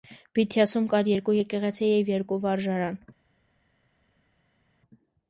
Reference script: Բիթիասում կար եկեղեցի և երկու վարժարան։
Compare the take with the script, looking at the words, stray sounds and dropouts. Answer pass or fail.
fail